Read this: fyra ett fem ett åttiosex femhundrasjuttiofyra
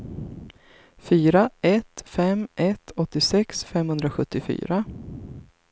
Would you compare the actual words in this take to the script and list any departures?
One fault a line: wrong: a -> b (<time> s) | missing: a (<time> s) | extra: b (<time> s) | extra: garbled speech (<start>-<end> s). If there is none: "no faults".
no faults